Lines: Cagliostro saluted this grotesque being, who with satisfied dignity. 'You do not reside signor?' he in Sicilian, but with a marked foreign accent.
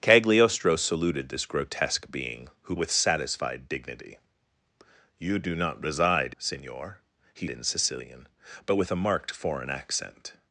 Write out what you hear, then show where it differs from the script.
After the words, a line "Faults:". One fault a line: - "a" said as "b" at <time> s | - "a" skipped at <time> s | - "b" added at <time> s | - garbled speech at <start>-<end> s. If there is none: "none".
Cagliostro saluted this grotesque being, who with satisfied dignity. 'You do not reside signor?' he in Sicilian, but with a marked foreign accent.
Faults:
none